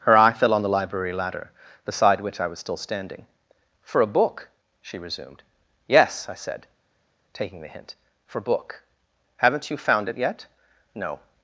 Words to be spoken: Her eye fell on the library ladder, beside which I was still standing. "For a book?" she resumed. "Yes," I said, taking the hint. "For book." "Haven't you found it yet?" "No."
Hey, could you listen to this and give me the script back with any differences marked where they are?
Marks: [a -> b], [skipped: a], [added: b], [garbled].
Her eye fell on the library ladder, beside which I was still standing. "For a book?" she resumed. "Yes," I said, taking the hint. "For book." "Haven't you found it yet?" "No."